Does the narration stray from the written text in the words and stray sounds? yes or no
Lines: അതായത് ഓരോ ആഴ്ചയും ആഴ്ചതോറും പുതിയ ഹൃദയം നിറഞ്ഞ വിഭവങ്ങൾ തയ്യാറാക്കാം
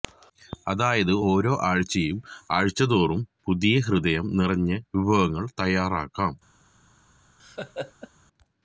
yes